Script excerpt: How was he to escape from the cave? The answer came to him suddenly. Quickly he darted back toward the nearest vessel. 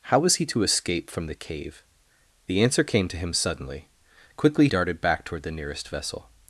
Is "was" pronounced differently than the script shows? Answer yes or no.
no